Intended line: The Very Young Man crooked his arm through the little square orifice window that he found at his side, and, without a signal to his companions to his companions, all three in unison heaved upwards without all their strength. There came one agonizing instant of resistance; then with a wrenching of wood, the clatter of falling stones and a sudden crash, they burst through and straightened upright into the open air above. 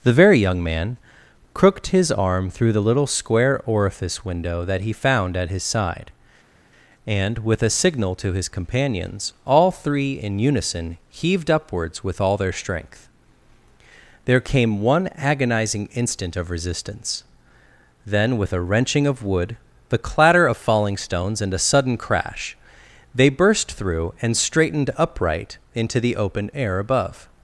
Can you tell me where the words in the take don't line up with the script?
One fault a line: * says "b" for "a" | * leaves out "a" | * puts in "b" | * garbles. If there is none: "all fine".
* says "with" for "without"
* leaves out "to his companions"
* says "with" for "without"